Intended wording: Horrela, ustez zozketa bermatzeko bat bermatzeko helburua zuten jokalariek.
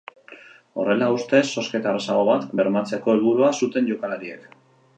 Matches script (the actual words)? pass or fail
fail